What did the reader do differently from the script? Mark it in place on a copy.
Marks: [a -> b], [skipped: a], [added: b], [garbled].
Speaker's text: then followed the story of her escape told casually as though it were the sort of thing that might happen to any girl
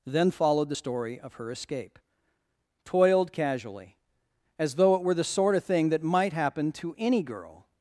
then followed the story of her escape [told -> toiled] casually as though it were the sort of thing that might happen to any girl